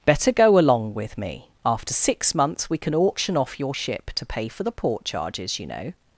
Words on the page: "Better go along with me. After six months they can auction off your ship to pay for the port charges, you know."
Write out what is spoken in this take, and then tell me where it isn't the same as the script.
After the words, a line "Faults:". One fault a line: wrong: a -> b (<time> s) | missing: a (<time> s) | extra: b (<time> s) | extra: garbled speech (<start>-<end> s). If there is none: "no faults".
"Better go along with me. After six months we can auction off your ship to pay for the port charges, you know."
Faults:
wrong: they -> we (2.7 s)